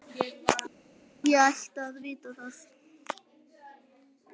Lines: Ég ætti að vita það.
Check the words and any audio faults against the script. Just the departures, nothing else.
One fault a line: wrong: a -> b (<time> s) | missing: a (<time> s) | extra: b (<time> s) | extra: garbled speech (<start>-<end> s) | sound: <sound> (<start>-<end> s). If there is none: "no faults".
no faults